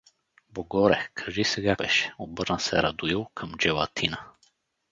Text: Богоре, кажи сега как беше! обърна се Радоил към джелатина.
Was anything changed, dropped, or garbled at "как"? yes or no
yes